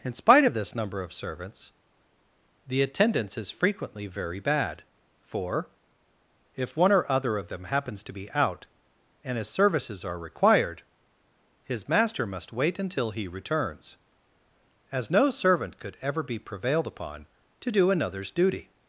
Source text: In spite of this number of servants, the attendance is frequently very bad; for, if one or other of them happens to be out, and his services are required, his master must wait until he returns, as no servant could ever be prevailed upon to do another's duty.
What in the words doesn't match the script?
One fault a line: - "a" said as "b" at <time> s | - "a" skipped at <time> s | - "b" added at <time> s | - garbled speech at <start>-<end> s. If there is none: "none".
none